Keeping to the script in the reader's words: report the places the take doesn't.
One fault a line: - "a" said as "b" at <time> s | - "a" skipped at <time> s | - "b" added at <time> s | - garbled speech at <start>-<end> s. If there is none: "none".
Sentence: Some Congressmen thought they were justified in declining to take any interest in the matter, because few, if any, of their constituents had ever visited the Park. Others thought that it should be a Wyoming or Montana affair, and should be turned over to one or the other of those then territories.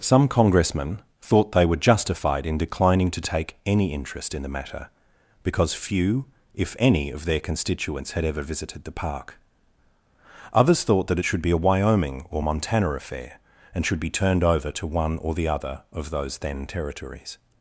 none